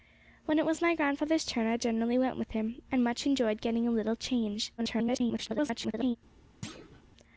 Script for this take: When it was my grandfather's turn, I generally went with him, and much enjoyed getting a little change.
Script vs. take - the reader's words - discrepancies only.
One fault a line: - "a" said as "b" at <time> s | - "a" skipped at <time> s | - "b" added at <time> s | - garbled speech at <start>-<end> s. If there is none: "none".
- garbled speech at 4.8-6.2 s